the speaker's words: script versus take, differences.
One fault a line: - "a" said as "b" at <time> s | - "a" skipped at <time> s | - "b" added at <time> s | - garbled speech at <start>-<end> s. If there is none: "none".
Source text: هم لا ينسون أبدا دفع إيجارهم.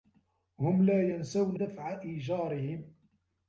- "أبدا" skipped at 1.6 s